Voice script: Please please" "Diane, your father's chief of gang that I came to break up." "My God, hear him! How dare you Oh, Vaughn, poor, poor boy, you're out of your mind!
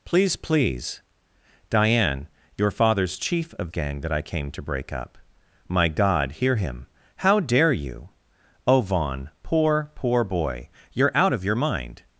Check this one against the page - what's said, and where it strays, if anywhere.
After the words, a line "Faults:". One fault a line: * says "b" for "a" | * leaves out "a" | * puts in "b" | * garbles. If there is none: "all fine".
Please please" "Diane, your father's chief of gang that I came to break up." "My God, hear him! How dare you Oh, Vaughn, poor, poor boy, you're out of your mind!
Faults:
all fine